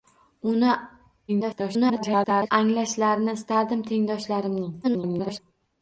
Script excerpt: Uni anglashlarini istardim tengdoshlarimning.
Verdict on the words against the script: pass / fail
fail